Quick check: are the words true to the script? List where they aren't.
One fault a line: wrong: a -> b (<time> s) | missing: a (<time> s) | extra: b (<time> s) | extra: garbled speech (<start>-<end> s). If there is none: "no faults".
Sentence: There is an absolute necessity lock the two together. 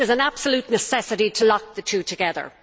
extra: to (1.3 s)